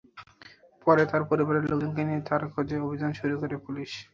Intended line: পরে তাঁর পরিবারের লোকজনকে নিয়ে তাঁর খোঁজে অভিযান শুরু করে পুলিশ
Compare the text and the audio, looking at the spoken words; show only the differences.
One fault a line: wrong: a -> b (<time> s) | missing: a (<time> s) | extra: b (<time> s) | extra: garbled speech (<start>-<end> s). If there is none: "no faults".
no faults